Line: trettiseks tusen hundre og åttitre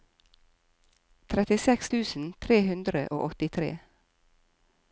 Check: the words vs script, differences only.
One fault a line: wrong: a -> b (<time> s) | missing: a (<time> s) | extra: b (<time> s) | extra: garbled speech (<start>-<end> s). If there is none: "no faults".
extra: tre (2.5 s)